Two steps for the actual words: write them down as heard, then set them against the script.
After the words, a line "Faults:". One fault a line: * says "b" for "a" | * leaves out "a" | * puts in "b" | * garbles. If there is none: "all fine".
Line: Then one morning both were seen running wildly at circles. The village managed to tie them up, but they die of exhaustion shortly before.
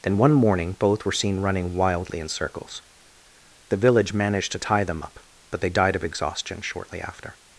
Then one morning both were seen running wildly in circles. The village managed to tie them up, but they died of exhaustion shortly after.
Faults:
* says "in" for "at"
* says "died" for "die"
* says "after" for "before"